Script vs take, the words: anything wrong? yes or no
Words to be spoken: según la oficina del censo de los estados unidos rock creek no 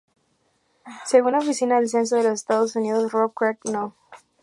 no